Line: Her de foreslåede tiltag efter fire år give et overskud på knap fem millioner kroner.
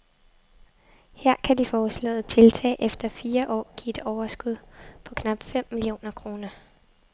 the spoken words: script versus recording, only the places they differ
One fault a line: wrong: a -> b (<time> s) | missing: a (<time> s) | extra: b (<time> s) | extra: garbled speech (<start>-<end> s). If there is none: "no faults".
extra: kan (1.4 s)